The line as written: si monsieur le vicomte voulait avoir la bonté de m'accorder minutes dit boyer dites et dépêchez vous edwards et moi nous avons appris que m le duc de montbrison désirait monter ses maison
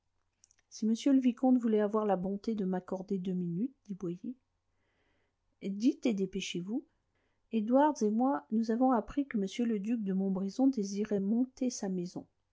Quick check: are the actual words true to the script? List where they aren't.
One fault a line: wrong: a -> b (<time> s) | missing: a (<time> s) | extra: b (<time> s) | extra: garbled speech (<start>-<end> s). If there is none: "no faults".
extra: deux (3.2 s)
wrong: ses -> sa (11.7 s)